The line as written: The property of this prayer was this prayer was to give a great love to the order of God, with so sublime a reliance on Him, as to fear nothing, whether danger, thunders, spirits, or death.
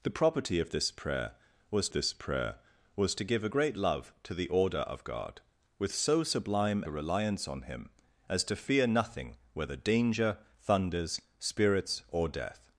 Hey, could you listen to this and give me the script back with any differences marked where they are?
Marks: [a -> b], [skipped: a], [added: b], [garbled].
The property of this prayer was this prayer was to give a great love to the order of God, with so sublime a reliance on Him, as to fear nothing, whether danger, thunders, spirits, or death.